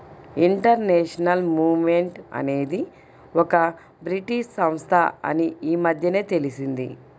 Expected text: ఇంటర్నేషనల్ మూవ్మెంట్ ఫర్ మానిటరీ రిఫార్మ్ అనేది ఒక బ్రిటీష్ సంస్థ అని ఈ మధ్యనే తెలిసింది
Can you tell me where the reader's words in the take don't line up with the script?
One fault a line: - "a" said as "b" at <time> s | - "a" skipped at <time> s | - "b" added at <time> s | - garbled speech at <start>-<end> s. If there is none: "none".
- "ఫర్ మానిటరీ రిఫార్మ్" skipped at 2.2 s